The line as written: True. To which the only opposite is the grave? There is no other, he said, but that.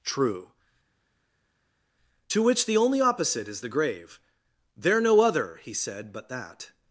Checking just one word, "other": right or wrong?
right